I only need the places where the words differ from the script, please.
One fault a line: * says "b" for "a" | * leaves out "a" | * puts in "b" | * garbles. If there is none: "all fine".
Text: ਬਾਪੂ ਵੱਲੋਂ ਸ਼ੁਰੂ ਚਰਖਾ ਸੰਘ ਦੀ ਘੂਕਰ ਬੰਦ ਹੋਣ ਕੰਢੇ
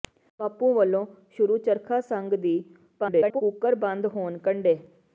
* garbles